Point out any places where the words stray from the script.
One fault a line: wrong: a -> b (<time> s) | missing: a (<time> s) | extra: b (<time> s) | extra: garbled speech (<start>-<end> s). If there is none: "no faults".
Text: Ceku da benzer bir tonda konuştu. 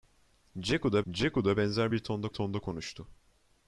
extra: ceku da (1.1 s)
extra: tonda (2.3 s)